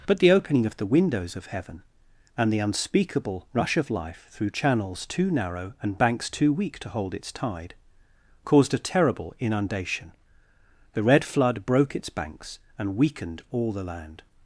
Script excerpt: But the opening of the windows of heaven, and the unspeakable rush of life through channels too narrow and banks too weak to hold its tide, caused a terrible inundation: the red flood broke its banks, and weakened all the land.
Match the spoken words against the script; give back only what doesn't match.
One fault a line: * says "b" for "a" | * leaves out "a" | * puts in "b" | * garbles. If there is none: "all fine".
all fine